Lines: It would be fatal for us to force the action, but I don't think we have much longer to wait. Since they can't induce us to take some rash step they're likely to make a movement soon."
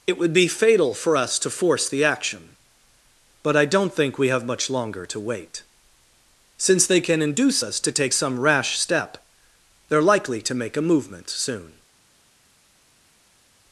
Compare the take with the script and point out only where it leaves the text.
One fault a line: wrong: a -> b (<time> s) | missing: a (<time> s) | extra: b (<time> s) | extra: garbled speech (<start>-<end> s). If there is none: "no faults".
wrong: can't -> can (7.0 s)